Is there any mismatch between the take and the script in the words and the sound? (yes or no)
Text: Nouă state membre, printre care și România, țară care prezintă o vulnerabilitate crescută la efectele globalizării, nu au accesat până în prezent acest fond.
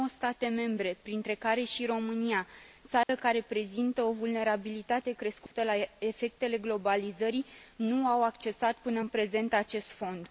yes